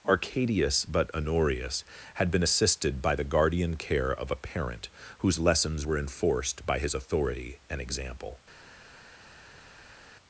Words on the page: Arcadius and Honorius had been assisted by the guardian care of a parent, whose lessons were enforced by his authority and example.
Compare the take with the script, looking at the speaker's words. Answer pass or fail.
fail